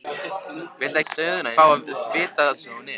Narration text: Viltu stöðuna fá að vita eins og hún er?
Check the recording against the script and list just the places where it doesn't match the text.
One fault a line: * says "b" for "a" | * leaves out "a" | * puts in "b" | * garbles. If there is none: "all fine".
all fine